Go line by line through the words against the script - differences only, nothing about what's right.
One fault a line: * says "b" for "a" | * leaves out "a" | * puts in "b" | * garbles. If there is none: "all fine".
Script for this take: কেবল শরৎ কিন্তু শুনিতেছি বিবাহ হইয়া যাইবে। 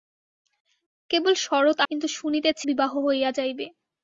all fine